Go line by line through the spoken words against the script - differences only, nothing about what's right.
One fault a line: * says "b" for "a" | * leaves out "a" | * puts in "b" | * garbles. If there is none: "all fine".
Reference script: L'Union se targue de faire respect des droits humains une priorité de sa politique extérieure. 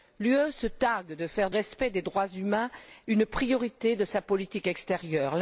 all fine